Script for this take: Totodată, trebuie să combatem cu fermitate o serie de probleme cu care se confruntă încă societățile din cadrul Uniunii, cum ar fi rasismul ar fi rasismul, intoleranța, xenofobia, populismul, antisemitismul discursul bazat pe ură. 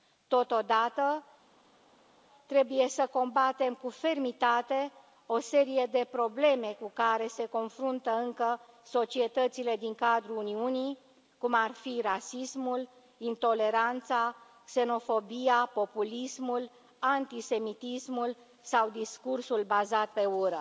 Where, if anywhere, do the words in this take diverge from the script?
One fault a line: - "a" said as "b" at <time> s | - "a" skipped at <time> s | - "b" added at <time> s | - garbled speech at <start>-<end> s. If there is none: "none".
- "ar fi rasismul" skipped at 12.9 s
- "sau" added at 18.6 s